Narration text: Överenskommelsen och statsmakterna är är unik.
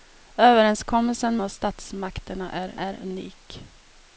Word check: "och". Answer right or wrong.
right